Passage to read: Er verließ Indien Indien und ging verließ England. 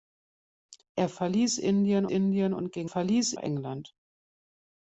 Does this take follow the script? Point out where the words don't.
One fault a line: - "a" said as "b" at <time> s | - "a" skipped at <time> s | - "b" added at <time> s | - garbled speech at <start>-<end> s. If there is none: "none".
none